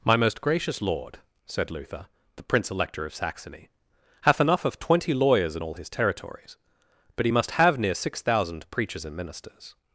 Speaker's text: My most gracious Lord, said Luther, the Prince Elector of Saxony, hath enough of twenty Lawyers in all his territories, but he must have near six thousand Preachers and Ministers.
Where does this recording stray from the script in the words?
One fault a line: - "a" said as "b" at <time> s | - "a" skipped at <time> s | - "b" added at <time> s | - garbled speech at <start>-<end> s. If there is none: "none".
none